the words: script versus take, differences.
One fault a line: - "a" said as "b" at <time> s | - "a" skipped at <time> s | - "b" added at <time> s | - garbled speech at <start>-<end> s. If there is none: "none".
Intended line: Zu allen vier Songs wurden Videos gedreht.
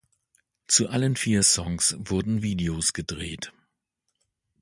none